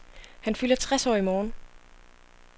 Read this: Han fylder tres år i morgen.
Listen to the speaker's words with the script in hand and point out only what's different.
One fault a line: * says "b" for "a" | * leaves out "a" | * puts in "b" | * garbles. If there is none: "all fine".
all fine